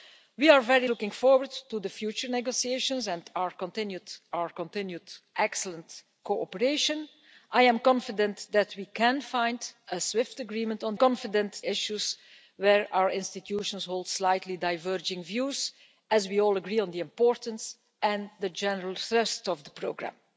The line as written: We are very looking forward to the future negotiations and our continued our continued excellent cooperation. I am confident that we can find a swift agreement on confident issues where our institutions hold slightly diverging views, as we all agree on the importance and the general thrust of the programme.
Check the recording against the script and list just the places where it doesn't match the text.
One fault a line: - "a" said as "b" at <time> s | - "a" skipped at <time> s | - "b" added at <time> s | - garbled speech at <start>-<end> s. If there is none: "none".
none